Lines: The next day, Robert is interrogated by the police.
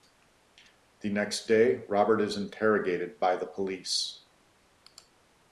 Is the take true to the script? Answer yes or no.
yes